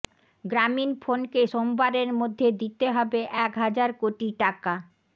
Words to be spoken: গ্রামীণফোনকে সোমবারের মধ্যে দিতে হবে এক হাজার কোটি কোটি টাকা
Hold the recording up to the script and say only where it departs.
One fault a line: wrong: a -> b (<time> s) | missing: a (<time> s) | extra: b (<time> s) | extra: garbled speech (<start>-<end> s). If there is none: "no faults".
missing: কোটি (4.3 s)